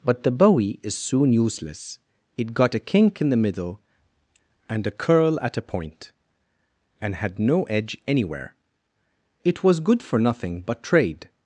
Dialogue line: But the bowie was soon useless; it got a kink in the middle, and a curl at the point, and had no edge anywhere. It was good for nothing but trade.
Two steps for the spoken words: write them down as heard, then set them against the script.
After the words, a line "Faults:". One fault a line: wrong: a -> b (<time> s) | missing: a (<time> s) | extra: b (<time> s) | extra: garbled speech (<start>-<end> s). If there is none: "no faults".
But the bowie is soon useless; it got a kink in the middle, and a curl at a point, and had no edge anywhere. It was good for nothing but trade.
Faults:
wrong: was -> is (0.8 s)
wrong: the -> a (5.6 s)